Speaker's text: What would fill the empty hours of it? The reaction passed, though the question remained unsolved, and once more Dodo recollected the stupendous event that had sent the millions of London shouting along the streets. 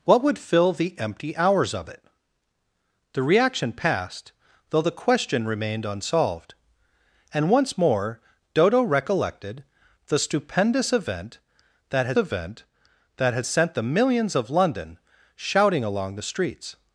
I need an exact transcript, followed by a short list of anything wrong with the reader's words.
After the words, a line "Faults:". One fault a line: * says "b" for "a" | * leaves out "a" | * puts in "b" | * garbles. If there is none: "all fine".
What would fill the empty hours of it? The reaction passed, though the question remained unsolved, and once more Dodo recollected the stupendous event that had event that had sent the millions of London shouting along the streets.
Faults:
* puts in "event that had"